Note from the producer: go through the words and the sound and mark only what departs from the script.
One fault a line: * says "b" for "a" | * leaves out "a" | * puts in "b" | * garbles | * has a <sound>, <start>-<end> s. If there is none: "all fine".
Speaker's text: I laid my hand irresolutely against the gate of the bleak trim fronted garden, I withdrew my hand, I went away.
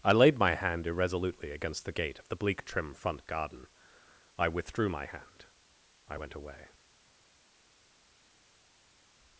* says "front" for "fronted"